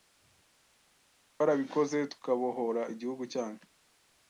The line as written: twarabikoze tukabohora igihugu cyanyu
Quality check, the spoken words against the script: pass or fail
pass